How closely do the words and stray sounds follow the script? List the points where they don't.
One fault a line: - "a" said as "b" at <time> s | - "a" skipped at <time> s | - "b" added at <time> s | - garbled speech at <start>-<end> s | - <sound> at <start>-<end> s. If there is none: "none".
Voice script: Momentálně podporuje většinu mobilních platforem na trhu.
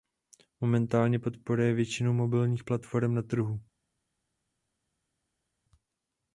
none